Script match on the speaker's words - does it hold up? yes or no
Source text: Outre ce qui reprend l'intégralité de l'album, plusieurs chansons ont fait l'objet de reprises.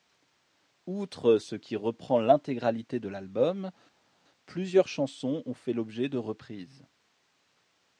yes